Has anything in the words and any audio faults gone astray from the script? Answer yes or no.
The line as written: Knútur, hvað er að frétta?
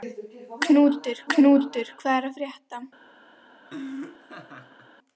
yes